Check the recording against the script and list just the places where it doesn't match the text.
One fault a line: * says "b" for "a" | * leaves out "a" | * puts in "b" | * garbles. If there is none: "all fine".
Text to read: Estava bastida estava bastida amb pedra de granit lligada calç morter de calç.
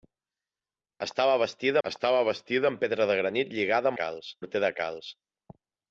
all fine